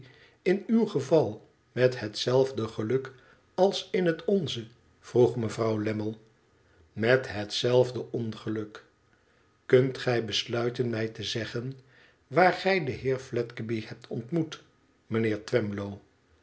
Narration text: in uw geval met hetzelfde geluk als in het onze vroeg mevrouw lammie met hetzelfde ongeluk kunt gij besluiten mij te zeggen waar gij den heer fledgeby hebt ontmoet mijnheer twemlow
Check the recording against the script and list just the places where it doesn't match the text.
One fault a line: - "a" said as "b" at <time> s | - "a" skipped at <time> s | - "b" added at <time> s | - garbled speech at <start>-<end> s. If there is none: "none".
none